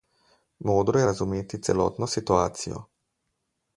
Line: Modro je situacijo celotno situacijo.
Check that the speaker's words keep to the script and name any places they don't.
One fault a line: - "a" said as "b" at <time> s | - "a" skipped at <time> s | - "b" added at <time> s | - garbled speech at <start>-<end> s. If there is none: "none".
- "situacijo" said as "razumeti" at 1.0 s